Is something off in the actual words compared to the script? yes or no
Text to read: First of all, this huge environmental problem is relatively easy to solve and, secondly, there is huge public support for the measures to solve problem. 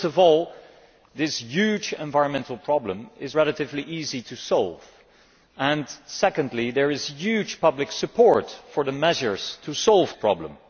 no